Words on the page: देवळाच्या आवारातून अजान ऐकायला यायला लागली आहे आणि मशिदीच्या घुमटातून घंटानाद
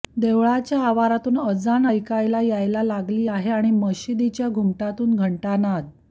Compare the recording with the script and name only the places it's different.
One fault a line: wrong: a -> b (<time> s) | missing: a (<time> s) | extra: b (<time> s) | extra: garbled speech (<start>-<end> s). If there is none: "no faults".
no faults